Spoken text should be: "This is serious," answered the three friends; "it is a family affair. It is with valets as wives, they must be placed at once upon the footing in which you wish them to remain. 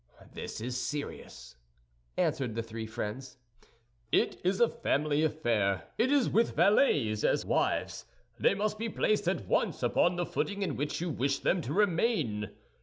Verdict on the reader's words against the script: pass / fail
pass